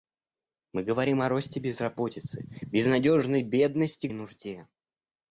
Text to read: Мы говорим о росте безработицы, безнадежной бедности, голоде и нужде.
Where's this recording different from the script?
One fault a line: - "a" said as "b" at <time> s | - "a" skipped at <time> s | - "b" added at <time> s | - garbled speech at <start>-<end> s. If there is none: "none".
- "голоде" skipped at 4.1 s